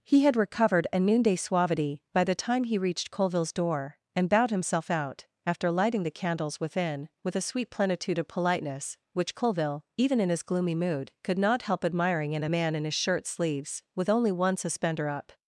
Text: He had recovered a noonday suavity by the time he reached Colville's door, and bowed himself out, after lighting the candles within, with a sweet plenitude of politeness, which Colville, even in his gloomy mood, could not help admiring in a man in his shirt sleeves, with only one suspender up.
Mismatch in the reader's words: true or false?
false